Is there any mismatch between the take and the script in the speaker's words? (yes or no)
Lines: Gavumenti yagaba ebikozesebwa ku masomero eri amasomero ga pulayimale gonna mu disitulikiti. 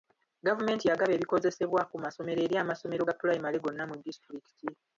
no